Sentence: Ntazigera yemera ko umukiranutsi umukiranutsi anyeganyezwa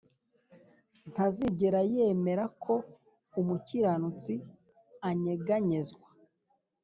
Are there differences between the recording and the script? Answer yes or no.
yes